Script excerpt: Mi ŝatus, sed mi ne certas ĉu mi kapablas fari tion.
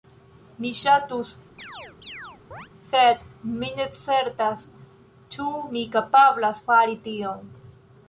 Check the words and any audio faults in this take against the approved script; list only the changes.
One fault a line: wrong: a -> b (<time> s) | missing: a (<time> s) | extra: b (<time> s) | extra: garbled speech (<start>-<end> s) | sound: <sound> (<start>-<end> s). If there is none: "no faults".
sound: chirp (1.6-2.7 s)